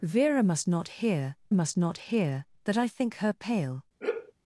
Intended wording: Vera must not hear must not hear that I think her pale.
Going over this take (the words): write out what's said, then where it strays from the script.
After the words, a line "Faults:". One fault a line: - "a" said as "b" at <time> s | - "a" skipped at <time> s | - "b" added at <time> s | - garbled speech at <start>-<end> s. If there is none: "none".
Vera must not hear must not hear that I think her pale.
Faults:
none